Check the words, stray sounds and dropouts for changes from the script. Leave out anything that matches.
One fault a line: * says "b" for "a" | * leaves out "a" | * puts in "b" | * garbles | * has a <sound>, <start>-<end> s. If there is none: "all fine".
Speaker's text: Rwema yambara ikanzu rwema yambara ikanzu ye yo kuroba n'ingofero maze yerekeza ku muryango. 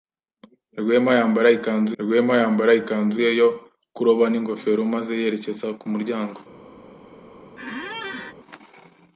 * has a squeak, 7.6-8.3 s